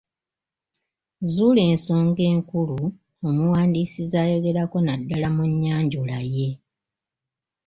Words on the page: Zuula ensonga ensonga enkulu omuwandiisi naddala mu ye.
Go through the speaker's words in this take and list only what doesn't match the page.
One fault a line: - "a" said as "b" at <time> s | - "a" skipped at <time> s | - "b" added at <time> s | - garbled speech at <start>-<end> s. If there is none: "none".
- "ensonga" skipped at 2.2 s
- "z'ayogerako" added at 4.1 s
- "nnyanjula" added at 5.5 s